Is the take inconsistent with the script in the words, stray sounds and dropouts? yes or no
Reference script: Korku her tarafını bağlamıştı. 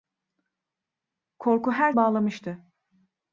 yes